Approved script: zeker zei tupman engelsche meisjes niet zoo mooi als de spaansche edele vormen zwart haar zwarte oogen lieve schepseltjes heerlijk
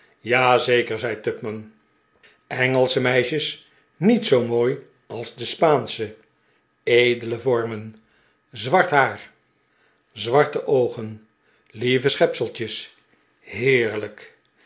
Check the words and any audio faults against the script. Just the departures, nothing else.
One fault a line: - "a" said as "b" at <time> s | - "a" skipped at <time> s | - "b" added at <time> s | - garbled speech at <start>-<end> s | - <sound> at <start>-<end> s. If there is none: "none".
none